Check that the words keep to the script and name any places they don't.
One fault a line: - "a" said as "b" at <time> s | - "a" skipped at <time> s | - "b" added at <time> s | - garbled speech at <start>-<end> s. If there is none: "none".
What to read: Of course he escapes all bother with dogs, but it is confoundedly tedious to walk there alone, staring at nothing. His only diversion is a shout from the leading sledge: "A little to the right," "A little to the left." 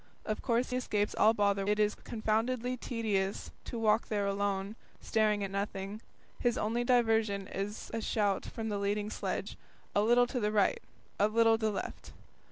- "he" skipped at 0.7 s
- "with dogs but" skipped at 1.7 s
- "to" skipped at 11.6 s